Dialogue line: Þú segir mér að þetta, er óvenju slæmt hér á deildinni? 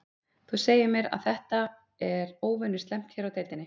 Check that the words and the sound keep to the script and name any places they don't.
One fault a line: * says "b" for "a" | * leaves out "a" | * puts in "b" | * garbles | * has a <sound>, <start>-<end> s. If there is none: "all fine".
all fine